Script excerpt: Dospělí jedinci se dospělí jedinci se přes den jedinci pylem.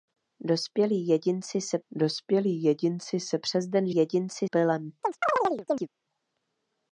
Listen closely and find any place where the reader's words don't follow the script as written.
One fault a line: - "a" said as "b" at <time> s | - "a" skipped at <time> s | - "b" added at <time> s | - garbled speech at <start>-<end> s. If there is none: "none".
none